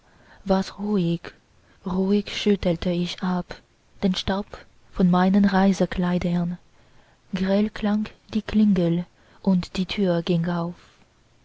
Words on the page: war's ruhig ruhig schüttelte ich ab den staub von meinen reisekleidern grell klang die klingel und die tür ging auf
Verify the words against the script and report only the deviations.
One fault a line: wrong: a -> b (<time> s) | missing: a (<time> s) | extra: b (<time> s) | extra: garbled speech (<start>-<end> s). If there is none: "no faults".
no faults